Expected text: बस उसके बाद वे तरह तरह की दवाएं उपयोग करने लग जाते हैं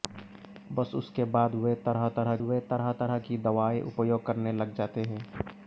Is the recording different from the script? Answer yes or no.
yes